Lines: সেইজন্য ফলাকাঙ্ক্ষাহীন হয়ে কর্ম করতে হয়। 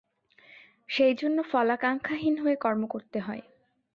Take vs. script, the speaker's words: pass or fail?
pass